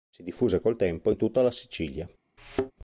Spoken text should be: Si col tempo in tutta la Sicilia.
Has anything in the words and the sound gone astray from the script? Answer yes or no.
yes